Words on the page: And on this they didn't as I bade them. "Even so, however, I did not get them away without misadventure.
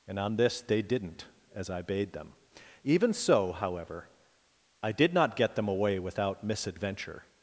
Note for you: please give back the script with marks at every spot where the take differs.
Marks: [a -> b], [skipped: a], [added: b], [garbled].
And on this they didn't as I bade them. "Even so, however, I did not get them away without misadventure.